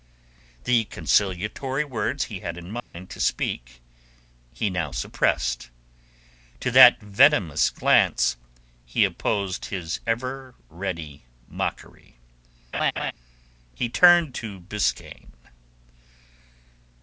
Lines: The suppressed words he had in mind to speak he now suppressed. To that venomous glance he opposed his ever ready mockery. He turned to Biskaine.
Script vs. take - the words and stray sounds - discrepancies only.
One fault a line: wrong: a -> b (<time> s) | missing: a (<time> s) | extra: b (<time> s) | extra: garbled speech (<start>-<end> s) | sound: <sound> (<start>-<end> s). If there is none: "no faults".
wrong: suppressed -> conciliatory (0.8 s)
sound: dropout (2.8-2.9 s)
sound: laugh (12.7-13.1 s)